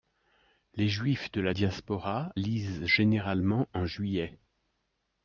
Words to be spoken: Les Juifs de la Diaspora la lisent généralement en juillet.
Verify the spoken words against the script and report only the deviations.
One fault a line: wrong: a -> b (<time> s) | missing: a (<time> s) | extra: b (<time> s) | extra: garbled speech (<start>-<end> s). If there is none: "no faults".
missing: la (2.3 s)